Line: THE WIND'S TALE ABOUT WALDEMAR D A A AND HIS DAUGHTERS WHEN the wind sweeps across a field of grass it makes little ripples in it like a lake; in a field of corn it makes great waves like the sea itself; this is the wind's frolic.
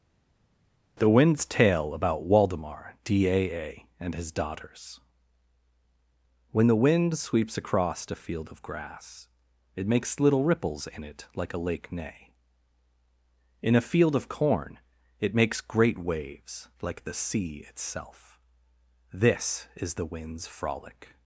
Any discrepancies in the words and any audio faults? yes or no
yes